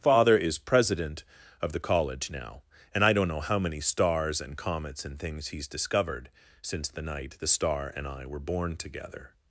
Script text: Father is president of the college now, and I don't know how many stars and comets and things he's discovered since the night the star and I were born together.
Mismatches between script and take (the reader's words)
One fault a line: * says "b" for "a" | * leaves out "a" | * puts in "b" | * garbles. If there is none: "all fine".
all fine